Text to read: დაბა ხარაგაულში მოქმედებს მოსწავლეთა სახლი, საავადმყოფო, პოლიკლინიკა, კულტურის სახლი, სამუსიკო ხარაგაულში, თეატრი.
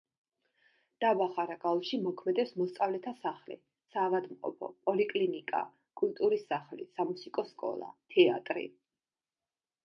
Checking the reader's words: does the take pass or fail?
fail